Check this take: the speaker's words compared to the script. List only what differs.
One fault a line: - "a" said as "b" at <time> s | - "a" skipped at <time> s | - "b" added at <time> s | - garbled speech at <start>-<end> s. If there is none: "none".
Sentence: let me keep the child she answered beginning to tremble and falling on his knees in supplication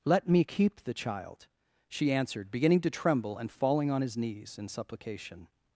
none